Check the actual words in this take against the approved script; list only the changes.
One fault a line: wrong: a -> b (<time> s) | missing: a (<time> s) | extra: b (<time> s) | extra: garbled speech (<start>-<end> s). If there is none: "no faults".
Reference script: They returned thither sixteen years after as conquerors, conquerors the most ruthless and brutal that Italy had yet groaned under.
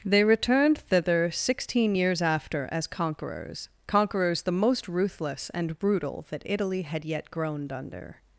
no faults